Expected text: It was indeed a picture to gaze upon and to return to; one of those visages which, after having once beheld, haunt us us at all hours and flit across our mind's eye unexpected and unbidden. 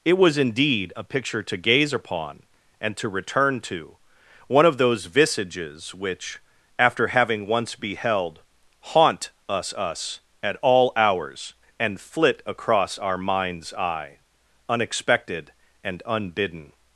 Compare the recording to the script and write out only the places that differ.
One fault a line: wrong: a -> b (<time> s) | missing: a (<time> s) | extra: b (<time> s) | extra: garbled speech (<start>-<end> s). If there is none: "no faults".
no faults